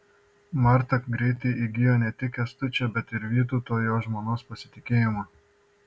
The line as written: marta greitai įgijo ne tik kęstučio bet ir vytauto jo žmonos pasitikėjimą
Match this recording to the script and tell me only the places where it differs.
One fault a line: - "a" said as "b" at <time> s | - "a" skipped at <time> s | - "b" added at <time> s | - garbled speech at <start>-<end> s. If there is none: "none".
none